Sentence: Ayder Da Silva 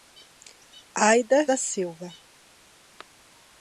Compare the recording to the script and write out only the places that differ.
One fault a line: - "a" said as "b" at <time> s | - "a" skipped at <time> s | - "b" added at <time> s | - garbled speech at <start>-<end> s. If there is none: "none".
none